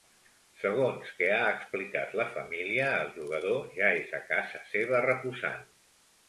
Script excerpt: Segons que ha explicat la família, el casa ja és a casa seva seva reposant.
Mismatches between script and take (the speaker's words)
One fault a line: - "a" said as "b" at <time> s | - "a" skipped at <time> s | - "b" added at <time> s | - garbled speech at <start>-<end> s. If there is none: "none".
- "casa" said as "jugador" at 3.2 s
- "seva" skipped at 5.0 s